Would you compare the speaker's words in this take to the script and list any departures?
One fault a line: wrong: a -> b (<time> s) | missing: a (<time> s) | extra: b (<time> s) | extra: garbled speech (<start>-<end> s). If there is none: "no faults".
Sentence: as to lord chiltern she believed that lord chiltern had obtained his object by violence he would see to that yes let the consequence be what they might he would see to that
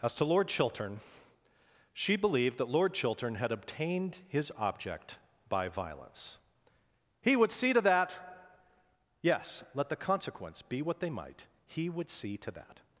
no faults